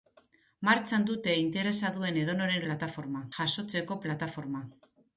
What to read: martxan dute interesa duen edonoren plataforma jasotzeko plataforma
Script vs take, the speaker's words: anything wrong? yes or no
no